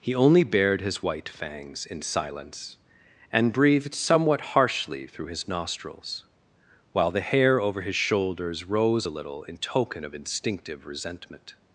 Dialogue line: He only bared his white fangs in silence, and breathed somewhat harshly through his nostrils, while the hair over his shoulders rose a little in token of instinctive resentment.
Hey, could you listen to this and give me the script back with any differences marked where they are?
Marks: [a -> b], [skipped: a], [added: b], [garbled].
He only bared his white fangs in silence, and breathed somewhat harshly through his nostrils, while the hair over his shoulders rose a little in token of instinctive resentment.